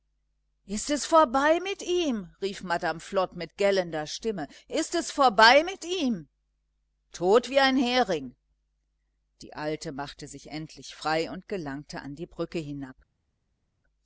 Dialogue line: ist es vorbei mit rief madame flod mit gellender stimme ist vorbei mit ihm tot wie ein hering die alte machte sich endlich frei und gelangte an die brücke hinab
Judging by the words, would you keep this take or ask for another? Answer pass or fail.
fail